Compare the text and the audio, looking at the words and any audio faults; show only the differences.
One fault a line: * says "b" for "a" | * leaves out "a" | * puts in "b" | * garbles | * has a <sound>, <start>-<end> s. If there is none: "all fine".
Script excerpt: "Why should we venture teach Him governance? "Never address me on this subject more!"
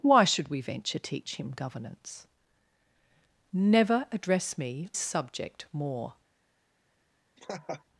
* leaves out "on this"
* has a laugh, 7.4-7.8 s